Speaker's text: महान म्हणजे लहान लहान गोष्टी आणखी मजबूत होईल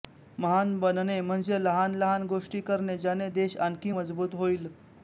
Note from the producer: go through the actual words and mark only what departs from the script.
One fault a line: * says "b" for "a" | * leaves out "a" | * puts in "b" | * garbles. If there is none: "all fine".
* puts in "बनणे"
* puts in "करणे ज्याने देश"